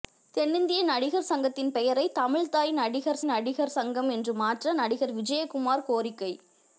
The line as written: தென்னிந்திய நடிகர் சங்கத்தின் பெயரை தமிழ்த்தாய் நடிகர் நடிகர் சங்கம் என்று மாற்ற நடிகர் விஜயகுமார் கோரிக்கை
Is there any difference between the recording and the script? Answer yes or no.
no